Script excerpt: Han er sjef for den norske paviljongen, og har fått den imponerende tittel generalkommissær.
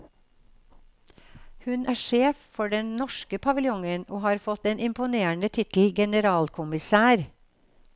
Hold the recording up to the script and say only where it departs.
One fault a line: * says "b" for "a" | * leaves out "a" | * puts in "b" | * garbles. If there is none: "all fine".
* says "Hun" for "Han"